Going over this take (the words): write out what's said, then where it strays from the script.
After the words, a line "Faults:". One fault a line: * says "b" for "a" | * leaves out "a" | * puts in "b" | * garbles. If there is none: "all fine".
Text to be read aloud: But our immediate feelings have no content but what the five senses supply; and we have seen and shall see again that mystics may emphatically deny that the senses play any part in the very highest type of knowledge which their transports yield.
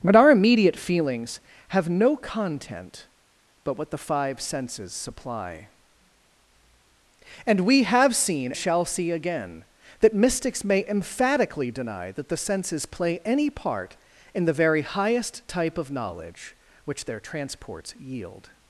But our immediate feelings have no content but what the five senses supply; and we have seen shall see again that mystics may emphatically deny that the senses play any part in the very highest type of knowledge which their transports yield.
Faults:
* leaves out "and"